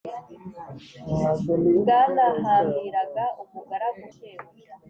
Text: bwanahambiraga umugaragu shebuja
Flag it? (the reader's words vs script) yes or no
no